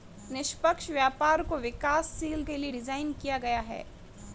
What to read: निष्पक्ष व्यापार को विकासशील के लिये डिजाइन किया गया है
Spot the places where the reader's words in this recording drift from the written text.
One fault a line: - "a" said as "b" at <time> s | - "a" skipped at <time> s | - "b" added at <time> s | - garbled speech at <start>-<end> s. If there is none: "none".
none